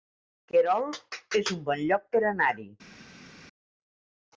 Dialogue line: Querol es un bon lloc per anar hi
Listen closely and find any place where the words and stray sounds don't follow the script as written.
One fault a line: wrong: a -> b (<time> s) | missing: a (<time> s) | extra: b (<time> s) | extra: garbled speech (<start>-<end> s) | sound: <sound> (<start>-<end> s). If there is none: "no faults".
no faults